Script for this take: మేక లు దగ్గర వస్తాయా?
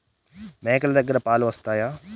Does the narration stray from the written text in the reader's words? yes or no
yes